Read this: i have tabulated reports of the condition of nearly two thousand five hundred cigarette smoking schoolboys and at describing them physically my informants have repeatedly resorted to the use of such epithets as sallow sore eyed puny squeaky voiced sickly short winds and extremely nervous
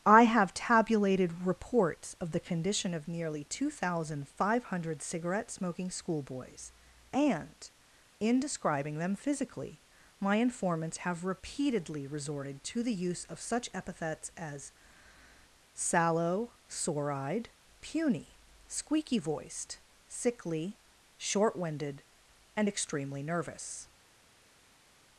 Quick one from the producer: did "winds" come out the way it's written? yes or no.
no